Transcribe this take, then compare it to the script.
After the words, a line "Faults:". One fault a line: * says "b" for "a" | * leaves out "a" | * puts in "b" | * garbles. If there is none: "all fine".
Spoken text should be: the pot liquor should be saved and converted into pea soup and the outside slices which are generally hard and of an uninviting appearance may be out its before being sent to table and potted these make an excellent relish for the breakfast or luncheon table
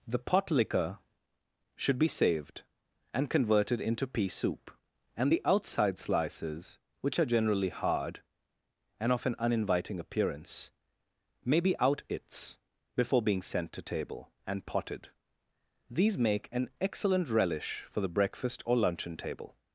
the pot liquor should be saved and converted into pea soup and the outside slices which are generally hard and of an uninviting appearance may be out its before being sent to table and potted these make an excellent relish for the breakfast or luncheon table
Faults:
all fine